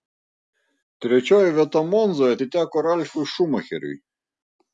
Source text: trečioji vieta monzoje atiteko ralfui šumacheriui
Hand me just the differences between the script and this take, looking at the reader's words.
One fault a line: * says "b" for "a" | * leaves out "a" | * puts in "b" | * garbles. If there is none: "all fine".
all fine